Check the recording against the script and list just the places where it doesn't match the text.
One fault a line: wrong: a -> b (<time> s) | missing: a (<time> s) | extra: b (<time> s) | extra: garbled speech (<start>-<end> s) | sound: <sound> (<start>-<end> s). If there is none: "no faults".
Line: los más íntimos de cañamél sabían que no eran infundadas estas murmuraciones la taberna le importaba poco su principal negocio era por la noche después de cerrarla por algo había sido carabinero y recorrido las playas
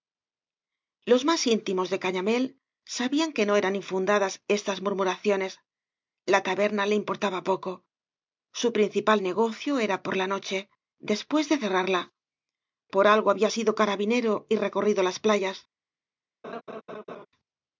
sound: laugh (16.4-17.3 s)